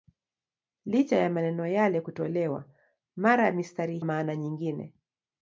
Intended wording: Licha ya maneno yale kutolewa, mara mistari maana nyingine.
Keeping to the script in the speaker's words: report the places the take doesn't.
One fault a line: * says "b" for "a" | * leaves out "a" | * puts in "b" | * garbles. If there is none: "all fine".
all fine